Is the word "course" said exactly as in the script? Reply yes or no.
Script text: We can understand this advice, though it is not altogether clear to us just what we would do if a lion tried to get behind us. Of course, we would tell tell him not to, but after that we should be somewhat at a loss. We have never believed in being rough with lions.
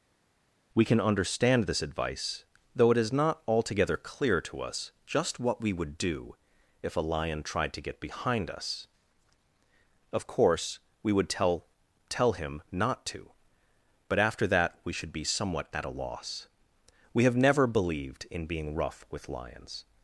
yes